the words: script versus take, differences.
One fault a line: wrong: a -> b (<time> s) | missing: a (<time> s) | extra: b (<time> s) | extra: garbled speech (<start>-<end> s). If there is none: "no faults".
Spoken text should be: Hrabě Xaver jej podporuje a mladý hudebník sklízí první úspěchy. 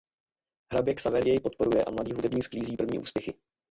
no faults